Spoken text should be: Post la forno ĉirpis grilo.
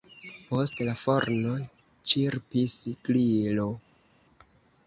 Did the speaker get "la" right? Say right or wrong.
right